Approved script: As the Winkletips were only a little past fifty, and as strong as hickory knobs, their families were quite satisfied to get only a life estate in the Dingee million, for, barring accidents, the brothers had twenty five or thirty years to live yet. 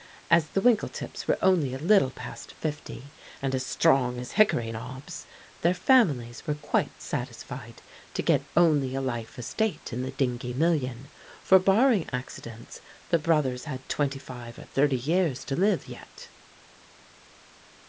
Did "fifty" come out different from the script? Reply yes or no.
no